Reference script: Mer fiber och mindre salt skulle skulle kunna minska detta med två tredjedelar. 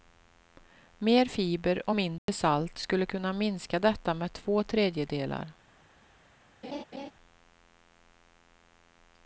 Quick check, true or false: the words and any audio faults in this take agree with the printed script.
false